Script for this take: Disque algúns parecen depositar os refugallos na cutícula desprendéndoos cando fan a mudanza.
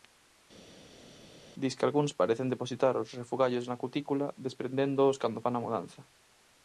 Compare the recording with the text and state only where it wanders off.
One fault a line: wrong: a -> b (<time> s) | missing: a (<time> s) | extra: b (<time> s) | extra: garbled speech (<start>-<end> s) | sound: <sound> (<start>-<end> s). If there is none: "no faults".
no faults